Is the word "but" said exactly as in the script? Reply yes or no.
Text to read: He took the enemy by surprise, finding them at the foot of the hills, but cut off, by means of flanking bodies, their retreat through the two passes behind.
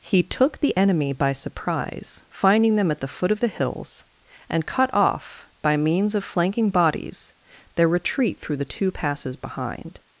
no